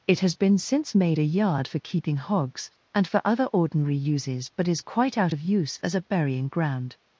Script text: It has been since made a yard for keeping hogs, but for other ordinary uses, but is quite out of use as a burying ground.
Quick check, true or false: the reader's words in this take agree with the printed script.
false